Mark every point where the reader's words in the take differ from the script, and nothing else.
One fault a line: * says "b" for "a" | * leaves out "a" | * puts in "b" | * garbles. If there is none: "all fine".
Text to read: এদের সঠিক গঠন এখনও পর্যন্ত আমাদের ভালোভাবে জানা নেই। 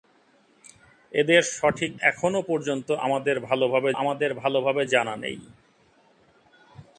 * leaves out "গঠন"
* puts in "আমাদের ভালোভাবে"